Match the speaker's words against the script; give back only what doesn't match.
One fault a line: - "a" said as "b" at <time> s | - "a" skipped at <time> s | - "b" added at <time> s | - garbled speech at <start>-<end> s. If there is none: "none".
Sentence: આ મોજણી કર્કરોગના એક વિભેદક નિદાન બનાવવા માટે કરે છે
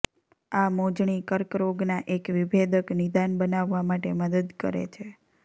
- "મદદ" added at 4.2 s